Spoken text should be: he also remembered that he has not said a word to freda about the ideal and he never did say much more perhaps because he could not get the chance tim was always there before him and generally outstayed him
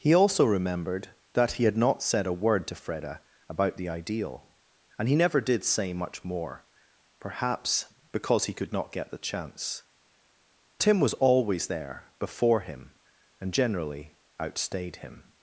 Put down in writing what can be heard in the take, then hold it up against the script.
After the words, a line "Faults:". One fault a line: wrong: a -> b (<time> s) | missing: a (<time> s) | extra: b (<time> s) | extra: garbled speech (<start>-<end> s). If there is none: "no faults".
he also remembered that he had not said a word to freda about the ideal and he never did say much more perhaps because he could not get the chance tim was always there before him and generally outstayed him
Faults:
wrong: has -> had (1.6 s)